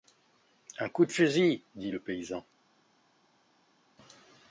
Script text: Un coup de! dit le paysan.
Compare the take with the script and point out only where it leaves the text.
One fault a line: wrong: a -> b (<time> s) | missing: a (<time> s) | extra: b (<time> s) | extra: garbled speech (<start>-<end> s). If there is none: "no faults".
extra: fusil (1.1 s)